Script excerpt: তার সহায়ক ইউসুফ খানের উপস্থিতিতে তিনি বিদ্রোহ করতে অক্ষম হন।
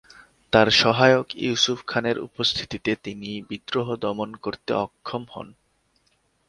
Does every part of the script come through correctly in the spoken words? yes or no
no